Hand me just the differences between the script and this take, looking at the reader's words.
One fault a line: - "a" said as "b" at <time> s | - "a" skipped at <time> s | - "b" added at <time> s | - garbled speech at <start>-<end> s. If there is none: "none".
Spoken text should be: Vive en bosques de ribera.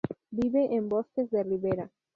none